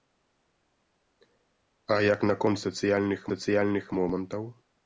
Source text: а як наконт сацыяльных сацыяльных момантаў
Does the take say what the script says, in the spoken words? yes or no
yes